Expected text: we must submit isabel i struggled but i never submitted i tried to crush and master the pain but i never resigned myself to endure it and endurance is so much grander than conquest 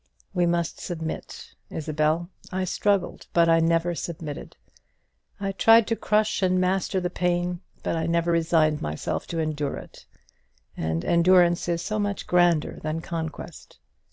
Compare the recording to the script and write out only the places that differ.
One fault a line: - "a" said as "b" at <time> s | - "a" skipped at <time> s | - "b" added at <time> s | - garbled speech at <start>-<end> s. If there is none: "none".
none